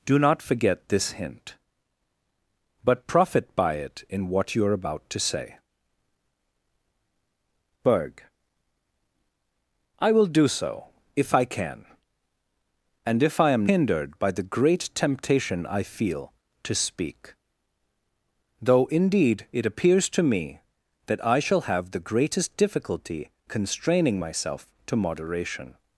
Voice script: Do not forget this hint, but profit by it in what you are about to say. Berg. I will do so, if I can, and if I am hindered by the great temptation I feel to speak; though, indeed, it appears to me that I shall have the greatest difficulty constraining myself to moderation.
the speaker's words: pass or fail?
pass